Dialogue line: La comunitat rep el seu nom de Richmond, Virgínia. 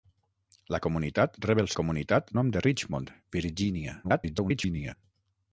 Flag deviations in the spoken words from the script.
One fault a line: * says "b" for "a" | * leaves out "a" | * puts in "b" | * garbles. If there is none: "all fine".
* says "comunitat" for "seu"
* garbles